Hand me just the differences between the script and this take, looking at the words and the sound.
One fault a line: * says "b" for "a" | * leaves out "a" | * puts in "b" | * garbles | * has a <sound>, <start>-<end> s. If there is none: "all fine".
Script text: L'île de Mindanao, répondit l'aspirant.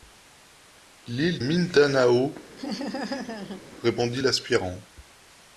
* leaves out "de"
* has a laugh, 2.6-3.6 s